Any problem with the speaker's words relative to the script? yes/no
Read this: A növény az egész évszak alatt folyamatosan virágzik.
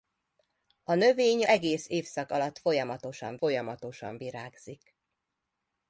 yes